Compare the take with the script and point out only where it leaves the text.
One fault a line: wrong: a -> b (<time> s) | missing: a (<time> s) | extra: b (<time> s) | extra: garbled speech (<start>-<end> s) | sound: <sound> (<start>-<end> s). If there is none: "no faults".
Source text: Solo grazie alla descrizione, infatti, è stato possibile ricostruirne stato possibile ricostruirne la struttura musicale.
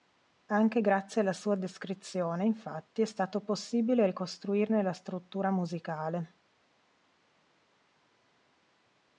wrong: Solo -> Anche (0.5 s)
extra: sua (1.3 s)
missing: stato possibile ricostruirne (4.8 s)